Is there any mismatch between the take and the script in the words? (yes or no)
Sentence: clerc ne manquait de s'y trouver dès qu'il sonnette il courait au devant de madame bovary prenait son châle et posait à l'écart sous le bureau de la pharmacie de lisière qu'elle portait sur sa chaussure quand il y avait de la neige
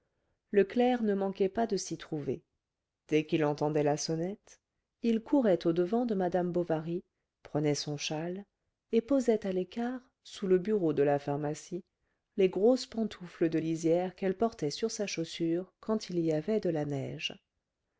yes